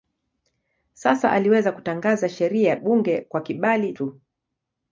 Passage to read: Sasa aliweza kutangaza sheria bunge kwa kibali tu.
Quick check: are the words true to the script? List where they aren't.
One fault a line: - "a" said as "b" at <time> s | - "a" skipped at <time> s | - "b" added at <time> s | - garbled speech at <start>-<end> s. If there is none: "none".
none